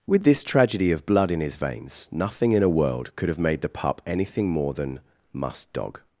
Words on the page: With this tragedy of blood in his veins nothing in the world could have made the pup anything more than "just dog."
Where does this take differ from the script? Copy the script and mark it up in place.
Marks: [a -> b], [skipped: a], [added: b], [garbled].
With this tragedy of blood in his veins nothing in [the -> a] world could have made the pup anything more than ["just -> must] dog."